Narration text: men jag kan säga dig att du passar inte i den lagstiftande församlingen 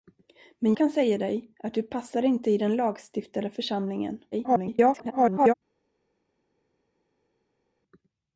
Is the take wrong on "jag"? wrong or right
wrong